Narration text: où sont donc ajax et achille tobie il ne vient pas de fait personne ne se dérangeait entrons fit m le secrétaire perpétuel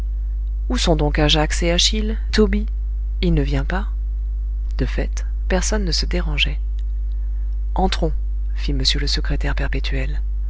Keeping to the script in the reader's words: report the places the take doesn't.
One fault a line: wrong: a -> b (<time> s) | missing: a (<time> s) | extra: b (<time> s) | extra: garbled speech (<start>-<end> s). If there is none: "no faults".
no faults